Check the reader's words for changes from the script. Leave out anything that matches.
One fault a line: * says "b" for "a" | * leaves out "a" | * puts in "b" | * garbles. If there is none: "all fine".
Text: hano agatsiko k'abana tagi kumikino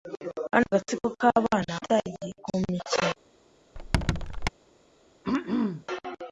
all fine